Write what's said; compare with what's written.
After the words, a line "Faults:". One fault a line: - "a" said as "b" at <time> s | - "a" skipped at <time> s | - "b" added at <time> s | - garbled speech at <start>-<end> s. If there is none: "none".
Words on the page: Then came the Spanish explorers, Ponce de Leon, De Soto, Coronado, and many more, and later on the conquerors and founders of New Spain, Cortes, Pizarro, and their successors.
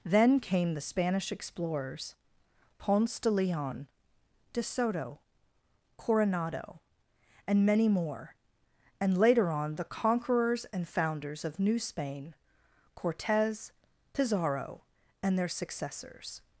Then came the Spanish explorers, Ponce de Leon, De Soto, Coronado, and many more, and later on the conquerors and founders of New Spain, Cortes, Pizarro, and their successors.
Faults:
none